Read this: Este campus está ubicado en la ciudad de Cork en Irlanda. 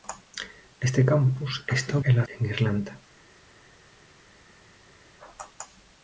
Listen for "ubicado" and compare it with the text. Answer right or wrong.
wrong